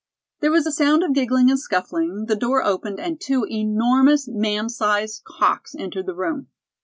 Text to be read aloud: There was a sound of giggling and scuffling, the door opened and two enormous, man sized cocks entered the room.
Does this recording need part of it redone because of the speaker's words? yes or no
no